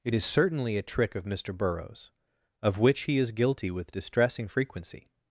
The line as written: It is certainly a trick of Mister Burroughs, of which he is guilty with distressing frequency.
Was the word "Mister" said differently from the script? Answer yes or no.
no